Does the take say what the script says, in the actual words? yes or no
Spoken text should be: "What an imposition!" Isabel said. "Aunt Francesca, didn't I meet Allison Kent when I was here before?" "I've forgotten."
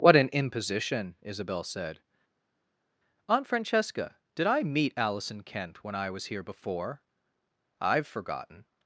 no